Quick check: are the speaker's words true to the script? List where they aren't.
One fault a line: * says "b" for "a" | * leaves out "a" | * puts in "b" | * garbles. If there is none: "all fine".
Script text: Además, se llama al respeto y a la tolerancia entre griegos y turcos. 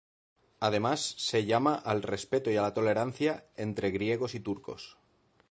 all fine